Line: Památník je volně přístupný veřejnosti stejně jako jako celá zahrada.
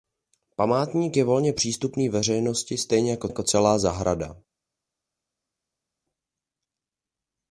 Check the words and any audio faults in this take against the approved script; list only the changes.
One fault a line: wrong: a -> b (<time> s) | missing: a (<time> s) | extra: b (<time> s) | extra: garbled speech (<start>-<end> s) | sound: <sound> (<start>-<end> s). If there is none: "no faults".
no faults